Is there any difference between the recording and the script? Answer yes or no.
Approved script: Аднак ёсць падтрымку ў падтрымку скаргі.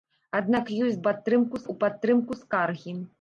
no